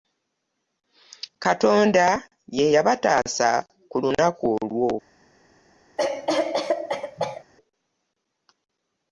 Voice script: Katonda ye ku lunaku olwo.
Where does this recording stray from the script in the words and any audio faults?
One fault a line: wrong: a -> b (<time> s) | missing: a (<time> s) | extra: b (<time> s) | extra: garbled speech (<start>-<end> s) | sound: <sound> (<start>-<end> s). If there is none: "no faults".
extra: yabataasa (2.7 s)
sound: cough (6.0-7.4 s)